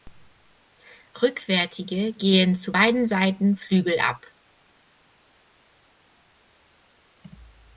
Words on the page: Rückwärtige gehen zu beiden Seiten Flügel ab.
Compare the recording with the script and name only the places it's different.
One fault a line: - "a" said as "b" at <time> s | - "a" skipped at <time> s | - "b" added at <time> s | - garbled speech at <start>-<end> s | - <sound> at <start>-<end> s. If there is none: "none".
none